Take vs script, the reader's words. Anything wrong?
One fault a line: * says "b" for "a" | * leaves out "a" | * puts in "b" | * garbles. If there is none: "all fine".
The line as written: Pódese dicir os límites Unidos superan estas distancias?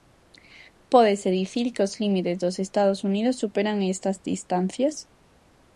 * puts in "que"
* puts in "dos Estados"